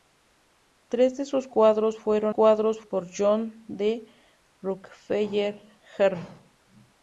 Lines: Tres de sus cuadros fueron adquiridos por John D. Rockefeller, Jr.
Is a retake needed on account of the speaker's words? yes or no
yes